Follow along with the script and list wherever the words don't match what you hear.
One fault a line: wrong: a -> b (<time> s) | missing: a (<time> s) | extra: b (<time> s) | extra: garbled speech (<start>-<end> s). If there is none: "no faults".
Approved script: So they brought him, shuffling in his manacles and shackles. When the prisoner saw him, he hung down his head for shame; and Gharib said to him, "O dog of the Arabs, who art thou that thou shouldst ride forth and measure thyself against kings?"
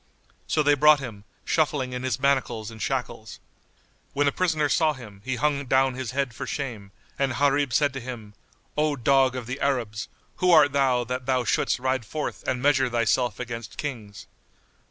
no faults